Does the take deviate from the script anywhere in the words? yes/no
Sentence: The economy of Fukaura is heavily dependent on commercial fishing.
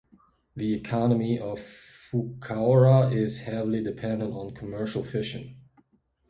no